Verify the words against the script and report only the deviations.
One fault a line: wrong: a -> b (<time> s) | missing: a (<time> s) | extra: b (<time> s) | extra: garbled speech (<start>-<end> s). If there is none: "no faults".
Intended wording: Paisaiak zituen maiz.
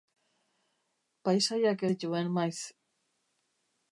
no faults